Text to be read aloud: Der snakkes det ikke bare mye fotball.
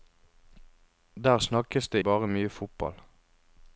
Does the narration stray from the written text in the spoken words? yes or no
yes